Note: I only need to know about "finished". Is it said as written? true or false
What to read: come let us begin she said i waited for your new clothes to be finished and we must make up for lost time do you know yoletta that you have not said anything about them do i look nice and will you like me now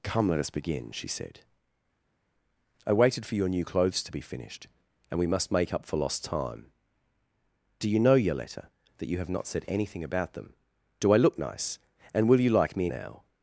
true